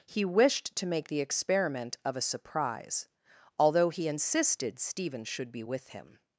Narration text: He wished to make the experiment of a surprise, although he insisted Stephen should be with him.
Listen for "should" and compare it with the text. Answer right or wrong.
right